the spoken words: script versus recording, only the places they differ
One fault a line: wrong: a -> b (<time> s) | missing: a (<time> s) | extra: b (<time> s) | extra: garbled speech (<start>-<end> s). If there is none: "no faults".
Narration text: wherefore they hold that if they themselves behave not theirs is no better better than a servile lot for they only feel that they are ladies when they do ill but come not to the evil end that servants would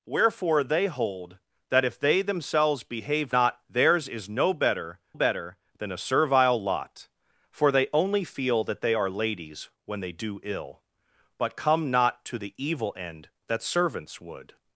no faults